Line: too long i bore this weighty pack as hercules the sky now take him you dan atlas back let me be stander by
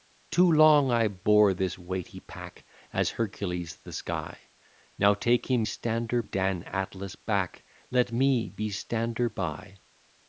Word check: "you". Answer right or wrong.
wrong